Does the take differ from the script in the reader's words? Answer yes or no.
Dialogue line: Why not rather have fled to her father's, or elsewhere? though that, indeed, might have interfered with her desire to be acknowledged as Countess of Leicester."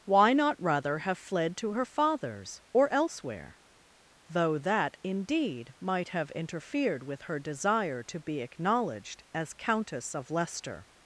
no